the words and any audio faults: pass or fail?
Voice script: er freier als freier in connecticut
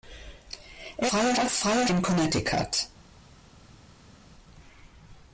pass